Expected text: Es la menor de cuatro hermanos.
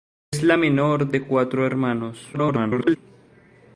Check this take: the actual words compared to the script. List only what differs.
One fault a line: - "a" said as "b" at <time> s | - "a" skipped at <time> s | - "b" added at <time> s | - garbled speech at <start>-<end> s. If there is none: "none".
- garbled speech at 2.3-3.0 s